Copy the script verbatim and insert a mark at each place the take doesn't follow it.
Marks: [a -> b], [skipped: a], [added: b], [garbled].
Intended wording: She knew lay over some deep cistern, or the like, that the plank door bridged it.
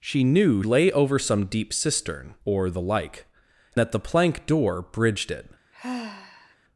She knew lay over some deep cistern, or the like, that the plank door bridged it.